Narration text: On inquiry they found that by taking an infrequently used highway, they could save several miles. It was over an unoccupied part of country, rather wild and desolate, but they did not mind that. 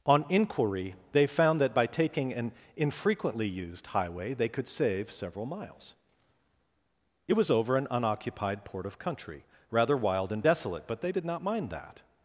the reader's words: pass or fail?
fail